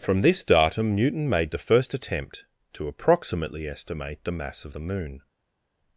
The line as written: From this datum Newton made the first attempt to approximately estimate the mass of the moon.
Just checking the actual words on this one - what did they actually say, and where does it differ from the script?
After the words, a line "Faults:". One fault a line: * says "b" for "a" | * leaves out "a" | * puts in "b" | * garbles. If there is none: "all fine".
From this datum Newton made the first attempt to approximately estimate the mass of the moon.
Faults:
all fine